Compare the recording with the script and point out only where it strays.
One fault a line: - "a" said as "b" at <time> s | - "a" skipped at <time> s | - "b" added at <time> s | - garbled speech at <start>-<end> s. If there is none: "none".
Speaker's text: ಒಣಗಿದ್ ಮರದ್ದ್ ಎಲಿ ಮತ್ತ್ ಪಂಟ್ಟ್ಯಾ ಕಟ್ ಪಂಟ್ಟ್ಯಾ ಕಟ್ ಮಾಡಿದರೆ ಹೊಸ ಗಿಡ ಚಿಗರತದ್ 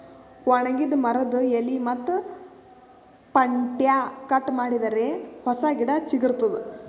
- "ಪಂಟ್ಟ್ಯಾ ಕಟ್" skipped at 4.5 s